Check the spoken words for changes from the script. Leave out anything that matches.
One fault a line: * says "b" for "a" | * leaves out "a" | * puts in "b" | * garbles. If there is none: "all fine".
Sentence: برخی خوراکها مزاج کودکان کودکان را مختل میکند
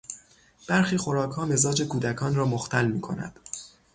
* leaves out "کودکان"